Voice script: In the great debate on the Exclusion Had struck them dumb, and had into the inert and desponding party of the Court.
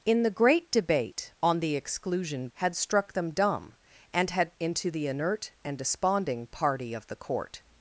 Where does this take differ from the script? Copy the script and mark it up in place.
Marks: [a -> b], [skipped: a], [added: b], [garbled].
In the great debate on the Exclusion Had struck them dumb, and had into the inert and desponding party of the Court.